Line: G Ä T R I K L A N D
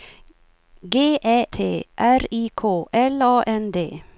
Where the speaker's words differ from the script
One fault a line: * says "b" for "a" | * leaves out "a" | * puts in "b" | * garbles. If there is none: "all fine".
all fine